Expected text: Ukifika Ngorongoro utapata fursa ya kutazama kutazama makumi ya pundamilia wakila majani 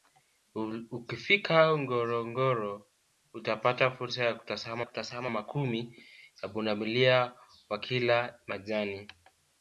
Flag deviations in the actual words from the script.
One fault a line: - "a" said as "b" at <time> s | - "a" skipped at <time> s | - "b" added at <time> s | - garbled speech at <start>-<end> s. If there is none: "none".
none